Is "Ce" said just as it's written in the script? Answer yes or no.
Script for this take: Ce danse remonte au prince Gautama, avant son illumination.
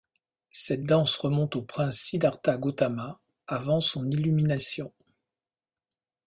no